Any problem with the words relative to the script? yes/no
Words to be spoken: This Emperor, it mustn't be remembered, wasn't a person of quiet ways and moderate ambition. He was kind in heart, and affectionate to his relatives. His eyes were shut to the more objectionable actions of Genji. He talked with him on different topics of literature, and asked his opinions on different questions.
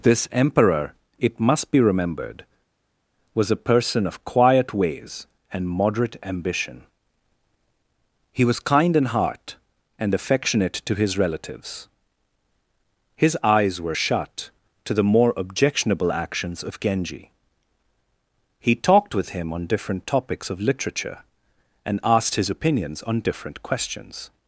yes